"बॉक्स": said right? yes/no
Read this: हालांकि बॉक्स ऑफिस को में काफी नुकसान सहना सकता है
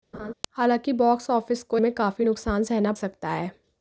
yes